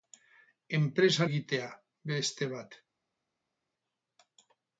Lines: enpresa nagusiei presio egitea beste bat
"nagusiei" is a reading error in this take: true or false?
true